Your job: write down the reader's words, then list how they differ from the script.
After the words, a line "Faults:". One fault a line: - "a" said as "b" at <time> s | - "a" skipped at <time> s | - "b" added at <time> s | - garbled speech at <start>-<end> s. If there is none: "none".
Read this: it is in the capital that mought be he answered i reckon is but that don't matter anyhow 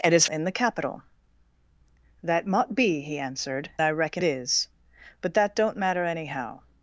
it is in the capital that mought be he answered i reckon is but that don't matter anyhow
Faults:
none